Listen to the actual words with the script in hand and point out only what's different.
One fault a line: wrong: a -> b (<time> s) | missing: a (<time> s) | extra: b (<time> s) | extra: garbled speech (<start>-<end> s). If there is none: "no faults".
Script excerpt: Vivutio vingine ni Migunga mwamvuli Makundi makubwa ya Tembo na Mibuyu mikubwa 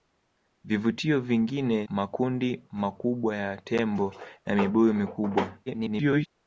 missing: ni Migunga mwamvuli (1.9 s)
extra: garbled speech (5.7-6.3 s)